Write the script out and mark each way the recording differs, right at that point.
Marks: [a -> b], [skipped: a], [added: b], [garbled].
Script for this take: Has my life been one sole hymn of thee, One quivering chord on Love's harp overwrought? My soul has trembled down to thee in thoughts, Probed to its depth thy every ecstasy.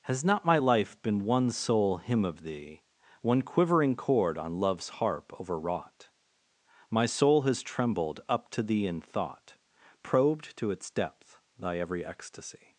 Has [added: not] my life been one sole hymn of thee, One quivering chord on Love's harp overwrought? My soul has trembled [down -> up] to thee in [thoughts, -> thought] Probed to its depth thy every ecstasy.